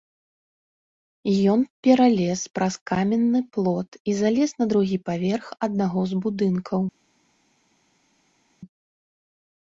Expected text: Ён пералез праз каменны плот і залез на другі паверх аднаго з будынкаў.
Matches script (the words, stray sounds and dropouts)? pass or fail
pass